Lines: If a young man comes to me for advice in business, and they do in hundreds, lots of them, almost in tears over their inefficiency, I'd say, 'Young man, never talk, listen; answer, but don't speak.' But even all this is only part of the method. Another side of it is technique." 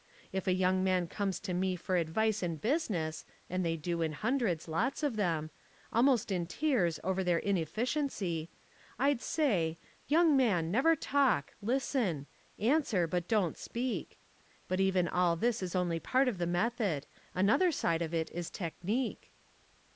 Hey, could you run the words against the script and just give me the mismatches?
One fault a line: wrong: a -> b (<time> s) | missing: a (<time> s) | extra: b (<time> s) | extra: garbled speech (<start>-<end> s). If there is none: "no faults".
no faults